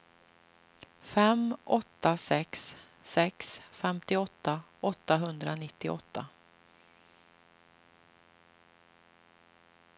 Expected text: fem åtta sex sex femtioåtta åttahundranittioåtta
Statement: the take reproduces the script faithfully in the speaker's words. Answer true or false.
true